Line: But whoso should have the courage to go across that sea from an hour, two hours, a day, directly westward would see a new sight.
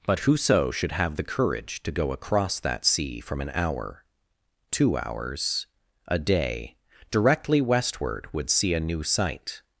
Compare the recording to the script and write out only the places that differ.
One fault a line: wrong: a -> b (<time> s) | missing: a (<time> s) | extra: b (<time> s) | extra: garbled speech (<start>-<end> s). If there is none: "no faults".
no faults